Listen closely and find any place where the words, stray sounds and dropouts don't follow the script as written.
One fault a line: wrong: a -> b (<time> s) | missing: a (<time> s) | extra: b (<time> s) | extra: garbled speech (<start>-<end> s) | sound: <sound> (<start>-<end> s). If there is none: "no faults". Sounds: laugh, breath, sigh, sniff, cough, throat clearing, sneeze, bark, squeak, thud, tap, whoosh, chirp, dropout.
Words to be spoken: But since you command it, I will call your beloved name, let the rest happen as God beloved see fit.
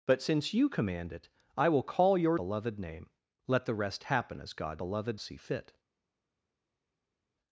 no faults